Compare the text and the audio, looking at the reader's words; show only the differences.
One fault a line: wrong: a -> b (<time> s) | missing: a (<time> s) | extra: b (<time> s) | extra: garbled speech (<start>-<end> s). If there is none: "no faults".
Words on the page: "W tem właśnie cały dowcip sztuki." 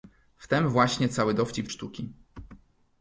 no faults